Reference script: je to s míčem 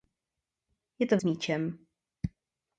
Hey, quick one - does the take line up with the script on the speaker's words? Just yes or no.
yes